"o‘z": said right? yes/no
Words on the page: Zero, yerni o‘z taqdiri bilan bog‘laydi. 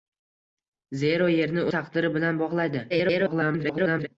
no